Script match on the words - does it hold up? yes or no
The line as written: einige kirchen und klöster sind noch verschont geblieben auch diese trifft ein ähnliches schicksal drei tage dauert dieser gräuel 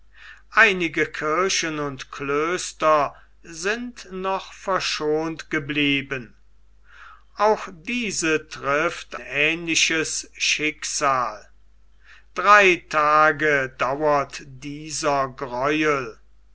no